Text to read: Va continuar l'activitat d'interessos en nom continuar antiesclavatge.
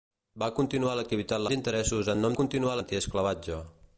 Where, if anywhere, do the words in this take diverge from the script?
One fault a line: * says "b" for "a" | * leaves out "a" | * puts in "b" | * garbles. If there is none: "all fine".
all fine